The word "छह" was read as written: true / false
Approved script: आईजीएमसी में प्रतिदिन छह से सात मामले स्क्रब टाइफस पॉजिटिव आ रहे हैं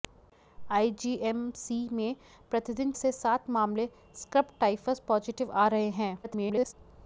false